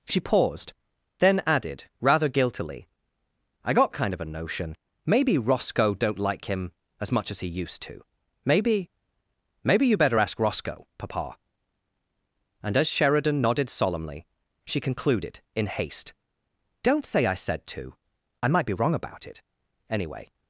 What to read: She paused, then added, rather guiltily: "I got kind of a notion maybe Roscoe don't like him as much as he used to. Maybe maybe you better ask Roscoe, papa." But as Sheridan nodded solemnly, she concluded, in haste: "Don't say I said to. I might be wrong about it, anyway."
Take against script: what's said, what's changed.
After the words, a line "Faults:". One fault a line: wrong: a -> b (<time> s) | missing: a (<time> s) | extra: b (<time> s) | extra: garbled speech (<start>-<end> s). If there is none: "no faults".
She paused, then added, rather guiltily: "I got kind of a notion maybe Roscoe don't like him as much as he used to. Maybe maybe you better ask Roscoe, papa." And as Sheridan nodded solemnly, she concluded, in haste: "Don't say I said to. I might be wrong about it, anyway."
Faults:
wrong: But -> And (12.6 s)